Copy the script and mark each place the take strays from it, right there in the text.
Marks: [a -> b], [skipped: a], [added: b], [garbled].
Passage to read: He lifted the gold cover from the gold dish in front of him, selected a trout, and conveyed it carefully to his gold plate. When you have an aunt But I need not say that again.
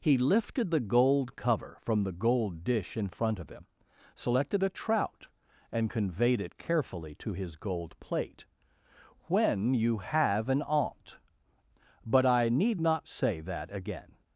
He lifted the gold cover from the gold dish in front of him, selected a trout, and conveyed it carefully to his gold plate. When you have an aunt But I need not say that again.